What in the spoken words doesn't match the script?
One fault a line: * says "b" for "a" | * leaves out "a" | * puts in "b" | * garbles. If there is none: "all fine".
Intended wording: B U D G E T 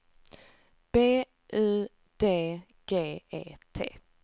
all fine